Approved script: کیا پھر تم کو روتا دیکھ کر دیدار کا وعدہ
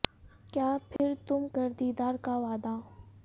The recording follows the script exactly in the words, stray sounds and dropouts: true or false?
false